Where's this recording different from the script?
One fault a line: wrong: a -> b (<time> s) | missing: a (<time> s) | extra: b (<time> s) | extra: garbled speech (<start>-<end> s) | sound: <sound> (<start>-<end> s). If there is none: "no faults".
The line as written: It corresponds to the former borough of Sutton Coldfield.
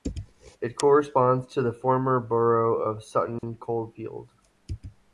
sound: dropout (3.4-3.4 s)